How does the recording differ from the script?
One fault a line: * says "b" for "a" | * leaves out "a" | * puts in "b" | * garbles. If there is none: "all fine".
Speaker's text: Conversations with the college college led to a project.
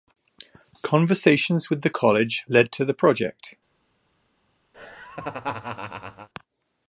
* leaves out "college"
* says "the" for "a"